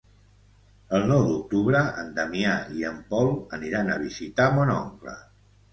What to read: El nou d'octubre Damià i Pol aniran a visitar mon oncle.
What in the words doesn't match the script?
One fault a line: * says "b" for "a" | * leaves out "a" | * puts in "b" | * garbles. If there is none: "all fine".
* puts in "en"
* puts in "en"